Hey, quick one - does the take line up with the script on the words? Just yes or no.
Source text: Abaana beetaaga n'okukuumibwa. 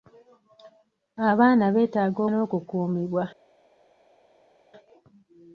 yes